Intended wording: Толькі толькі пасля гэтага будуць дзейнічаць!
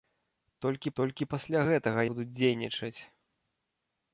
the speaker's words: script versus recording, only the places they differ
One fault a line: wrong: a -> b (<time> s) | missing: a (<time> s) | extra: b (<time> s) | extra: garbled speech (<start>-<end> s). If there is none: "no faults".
no faults